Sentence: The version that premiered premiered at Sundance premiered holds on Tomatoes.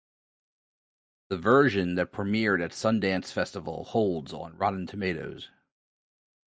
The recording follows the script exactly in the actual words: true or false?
false